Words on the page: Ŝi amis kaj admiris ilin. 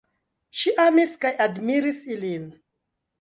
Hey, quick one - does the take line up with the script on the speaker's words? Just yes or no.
yes